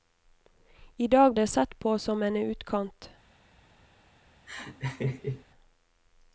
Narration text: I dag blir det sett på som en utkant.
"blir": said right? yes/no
no